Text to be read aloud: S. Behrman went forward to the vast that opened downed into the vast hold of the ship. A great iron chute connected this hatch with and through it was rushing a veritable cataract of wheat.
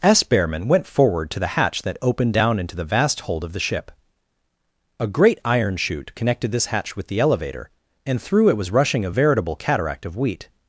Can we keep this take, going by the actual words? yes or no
no